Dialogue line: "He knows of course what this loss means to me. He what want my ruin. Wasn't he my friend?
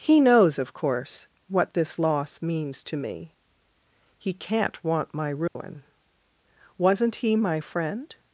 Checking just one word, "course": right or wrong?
right